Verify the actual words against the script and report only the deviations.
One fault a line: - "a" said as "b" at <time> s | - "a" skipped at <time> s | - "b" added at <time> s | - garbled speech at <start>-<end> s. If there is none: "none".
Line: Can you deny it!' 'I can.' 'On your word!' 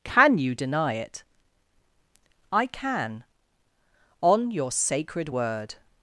- "sacred" added at 4.7 s